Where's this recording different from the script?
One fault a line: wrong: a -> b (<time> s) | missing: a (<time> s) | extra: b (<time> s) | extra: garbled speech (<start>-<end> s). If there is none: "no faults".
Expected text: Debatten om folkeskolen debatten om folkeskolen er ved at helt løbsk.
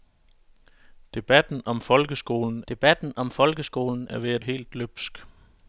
no faults